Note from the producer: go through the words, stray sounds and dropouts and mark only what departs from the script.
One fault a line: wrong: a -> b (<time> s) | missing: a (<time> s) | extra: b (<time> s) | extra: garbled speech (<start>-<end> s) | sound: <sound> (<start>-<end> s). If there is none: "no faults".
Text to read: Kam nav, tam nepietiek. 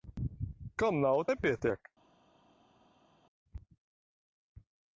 missing: tam (1.2 s)